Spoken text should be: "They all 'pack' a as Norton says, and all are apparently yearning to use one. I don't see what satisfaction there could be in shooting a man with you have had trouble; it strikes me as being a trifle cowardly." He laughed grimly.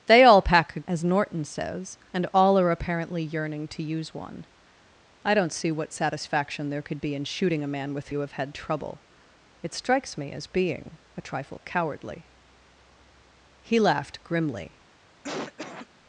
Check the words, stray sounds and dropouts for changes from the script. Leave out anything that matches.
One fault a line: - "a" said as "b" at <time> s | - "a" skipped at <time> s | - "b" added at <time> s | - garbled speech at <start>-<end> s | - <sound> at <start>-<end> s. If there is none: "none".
- cough at 15.2-15.9 s